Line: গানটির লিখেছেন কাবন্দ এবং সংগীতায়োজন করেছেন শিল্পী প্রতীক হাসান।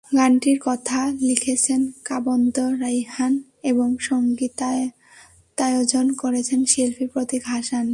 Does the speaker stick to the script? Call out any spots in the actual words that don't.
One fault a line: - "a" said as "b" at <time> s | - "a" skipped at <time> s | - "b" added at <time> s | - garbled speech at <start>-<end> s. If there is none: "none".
- "কথা" added at 0.6 s
- "রাইহান" added at 2.8 s